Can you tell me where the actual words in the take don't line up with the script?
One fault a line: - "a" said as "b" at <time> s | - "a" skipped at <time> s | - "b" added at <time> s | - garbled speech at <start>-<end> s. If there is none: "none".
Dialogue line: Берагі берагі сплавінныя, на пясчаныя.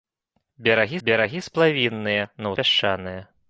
none